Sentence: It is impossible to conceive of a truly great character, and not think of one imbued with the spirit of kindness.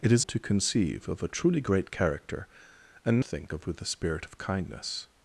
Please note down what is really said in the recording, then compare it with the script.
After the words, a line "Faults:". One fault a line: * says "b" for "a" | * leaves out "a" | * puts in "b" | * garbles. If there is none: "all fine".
It is to conceive of a truly great character, and think of with the spirit of kindness.
Faults:
* leaves out "impossible"
* leaves out "not"
* leaves out "one imbued"